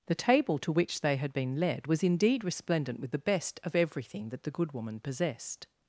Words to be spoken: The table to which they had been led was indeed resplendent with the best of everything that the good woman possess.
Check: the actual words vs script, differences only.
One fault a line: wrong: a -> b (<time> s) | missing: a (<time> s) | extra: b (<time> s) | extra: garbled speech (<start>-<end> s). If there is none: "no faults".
wrong: possess -> possessed (5.0 s)